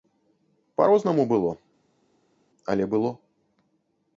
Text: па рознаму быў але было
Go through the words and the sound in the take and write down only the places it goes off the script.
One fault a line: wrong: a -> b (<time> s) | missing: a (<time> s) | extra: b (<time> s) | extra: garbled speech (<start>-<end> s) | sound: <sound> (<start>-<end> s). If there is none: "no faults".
wrong: быў -> было (1.3 s)